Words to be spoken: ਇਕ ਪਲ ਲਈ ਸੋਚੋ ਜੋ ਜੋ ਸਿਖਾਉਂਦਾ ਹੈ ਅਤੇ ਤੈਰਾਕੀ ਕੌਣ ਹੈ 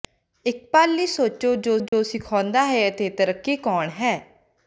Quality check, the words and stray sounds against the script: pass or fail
fail